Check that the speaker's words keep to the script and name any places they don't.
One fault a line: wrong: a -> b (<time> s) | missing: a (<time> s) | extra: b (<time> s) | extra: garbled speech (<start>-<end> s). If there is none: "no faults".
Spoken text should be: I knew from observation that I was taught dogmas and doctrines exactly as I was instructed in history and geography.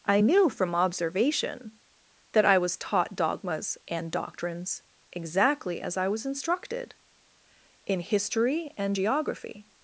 no faults